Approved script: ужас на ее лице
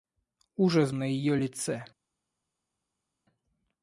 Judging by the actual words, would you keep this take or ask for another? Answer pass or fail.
pass